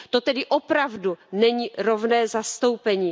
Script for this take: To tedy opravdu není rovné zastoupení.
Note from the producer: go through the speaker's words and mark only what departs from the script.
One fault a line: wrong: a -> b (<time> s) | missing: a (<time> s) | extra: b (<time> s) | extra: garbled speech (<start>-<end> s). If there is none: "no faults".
no faults